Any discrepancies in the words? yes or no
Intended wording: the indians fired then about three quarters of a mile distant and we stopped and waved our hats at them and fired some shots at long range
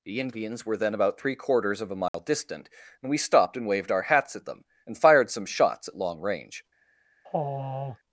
yes